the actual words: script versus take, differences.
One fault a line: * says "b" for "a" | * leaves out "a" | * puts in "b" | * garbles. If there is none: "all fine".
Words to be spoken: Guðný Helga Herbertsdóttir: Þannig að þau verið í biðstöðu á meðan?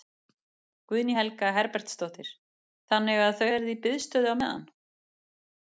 all fine